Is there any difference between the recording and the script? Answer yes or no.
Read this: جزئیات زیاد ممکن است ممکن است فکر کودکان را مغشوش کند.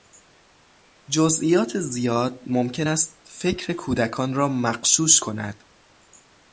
yes